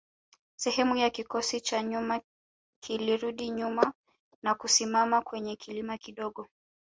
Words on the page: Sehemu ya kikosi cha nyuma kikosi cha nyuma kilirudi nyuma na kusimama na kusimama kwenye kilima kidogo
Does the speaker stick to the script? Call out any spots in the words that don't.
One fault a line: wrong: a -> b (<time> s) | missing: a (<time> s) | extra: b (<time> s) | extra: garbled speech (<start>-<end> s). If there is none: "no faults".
missing: kikosi cha nyuma (2.2 s)
missing: na kusimama (5.2 s)